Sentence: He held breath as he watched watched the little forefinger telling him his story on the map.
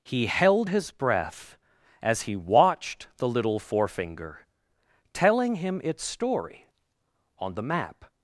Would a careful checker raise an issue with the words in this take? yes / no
yes